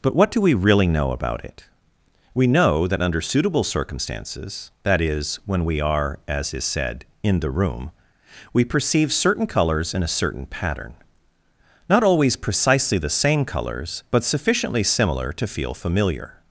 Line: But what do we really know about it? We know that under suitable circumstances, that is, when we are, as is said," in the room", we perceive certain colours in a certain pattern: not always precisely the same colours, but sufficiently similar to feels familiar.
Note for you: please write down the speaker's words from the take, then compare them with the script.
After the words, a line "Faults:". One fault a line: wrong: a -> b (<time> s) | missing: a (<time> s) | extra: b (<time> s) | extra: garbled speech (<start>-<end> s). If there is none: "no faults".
But what do we really know about it? We know that under suitable circumstances, that is, when we are, as is said," in the room", we perceive certain colours in a certain pattern: not always precisely the same colours, but sufficiently similar to feel familiar.
Faults:
wrong: feels -> feel (15.4 s)